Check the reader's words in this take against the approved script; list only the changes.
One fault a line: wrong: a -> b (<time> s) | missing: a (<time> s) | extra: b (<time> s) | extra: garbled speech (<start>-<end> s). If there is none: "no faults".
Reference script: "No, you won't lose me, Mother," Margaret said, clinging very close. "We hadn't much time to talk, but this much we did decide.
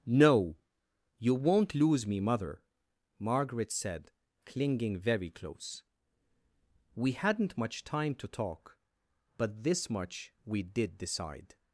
no faults